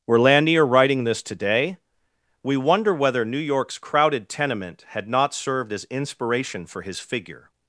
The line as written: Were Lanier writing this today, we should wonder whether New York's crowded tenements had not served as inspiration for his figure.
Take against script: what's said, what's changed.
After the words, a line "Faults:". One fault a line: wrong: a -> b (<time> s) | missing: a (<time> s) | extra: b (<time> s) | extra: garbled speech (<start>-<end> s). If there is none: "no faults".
Were Lanier writing this today, we wonder whether New York's crowded tenement had not served as inspiration for his figure.
Faults:
missing: should (2.6 s)
wrong: tenements -> tenement (4.3 s)